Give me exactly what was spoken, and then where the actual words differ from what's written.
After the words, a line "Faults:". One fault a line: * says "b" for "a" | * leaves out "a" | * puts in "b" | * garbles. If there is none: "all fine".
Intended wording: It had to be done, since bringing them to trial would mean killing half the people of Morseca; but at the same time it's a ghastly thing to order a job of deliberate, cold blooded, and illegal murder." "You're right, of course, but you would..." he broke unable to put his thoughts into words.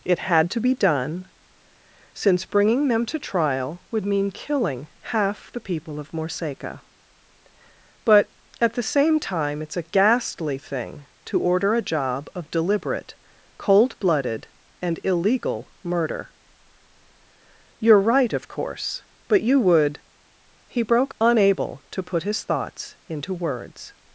It had to be done, since bringing them to trial would mean killing half the people of Morseca; but at the same time it's a ghastly thing to order a job of deliberate, cold blooded, and illegal murder." "You're right, of course, but you would..." he broke unable to put his thoughts into words.
Faults:
all fine